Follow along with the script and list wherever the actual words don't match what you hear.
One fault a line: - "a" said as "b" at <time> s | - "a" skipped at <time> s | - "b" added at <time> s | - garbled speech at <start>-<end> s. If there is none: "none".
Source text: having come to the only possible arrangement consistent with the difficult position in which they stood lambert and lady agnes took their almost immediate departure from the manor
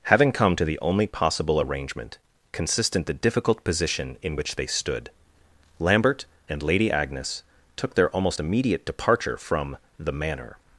- "with" skipped at 3.1 s